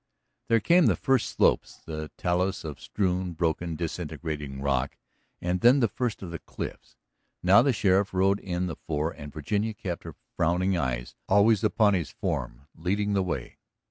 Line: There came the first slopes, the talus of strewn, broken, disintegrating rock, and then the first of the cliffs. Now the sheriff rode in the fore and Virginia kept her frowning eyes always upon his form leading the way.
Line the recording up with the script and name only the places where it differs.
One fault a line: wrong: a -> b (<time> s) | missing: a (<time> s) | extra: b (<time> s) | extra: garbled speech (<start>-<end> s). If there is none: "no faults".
no faults